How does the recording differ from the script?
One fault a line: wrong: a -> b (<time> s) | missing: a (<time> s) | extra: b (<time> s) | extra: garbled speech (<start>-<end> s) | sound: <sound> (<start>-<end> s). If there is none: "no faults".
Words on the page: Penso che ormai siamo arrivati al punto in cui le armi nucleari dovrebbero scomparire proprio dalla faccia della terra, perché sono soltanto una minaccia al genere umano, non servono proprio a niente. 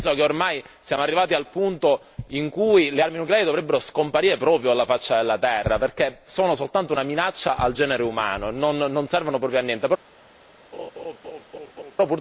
sound: laugh (10.7-12.0 s)